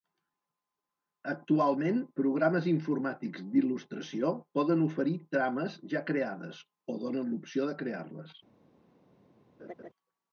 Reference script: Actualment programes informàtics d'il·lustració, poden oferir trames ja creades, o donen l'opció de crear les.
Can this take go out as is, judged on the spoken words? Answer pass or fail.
pass